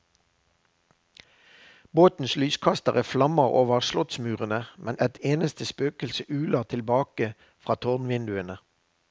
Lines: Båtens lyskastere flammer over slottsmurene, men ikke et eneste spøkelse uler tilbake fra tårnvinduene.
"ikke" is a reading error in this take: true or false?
true